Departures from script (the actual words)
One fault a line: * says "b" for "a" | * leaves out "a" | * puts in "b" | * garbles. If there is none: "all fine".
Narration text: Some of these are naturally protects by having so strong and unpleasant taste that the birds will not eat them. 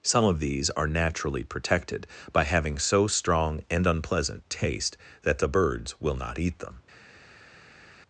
* says "protected" for "protects"